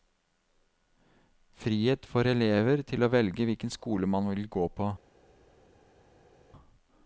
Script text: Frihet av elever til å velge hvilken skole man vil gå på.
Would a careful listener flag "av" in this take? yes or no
yes